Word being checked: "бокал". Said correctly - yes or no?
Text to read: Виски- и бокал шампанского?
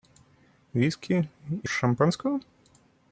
no